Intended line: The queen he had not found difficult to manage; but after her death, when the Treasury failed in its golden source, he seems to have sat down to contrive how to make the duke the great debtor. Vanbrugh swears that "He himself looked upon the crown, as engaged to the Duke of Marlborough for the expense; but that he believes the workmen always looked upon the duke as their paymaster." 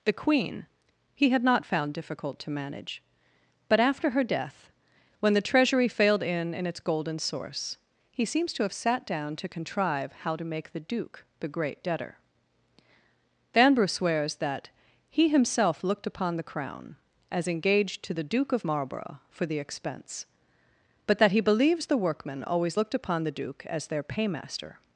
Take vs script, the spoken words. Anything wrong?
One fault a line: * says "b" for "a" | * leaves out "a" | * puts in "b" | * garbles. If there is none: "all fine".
* puts in "in"